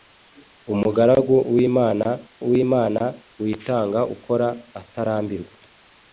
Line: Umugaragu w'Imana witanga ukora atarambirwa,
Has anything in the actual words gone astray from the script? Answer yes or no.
yes